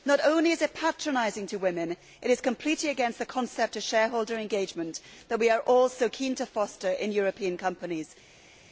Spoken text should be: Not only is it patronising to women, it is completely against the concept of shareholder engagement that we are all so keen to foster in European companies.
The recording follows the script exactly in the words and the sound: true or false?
true